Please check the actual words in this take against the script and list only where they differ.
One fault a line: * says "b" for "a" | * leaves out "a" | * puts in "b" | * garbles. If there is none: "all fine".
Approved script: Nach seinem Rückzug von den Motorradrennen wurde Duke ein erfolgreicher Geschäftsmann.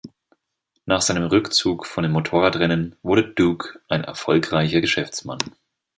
all fine